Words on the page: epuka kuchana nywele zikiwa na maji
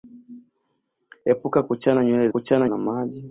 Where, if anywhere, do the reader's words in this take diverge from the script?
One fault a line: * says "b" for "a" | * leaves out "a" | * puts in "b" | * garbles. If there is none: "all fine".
* says "kuchana" for "zikiwa"